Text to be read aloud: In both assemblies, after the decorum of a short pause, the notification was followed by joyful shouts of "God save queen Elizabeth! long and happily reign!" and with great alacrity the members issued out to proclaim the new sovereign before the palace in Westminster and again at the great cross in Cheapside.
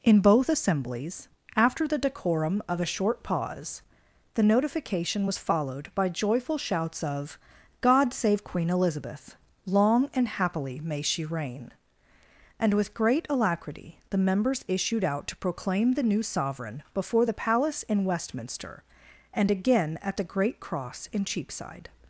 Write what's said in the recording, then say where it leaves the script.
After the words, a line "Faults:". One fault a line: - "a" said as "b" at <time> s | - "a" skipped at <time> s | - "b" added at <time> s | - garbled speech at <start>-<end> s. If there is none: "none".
In both assemblies, after the decorum of a short pause, the notification was followed by joyful shouts of "God save queen Elizabeth! long and happily may she reign!" and with great alacrity the members issued out to proclaim the new sovereign before the palace in Westminster and again at the great cross in Cheapside.
Faults:
- "may she" added at 10.8 s